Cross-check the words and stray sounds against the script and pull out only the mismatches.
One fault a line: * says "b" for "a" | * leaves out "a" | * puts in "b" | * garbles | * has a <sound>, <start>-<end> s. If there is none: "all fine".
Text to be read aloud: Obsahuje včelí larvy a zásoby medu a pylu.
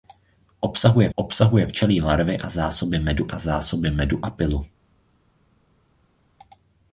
* puts in "obsahuje"
* puts in "zásoby medu a"